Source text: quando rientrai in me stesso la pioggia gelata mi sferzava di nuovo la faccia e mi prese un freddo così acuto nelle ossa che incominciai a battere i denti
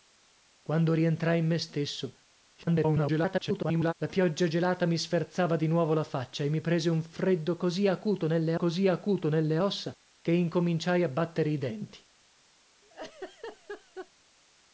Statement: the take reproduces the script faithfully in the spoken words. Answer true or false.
false